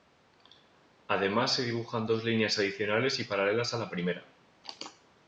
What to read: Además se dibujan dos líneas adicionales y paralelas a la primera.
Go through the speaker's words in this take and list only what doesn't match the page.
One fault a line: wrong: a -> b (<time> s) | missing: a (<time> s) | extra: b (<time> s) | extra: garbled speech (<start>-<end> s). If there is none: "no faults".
no faults